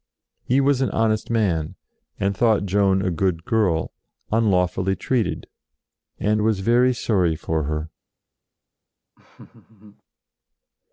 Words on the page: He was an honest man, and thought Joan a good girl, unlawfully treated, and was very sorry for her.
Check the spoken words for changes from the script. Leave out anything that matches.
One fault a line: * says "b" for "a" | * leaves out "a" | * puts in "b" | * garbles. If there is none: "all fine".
all fine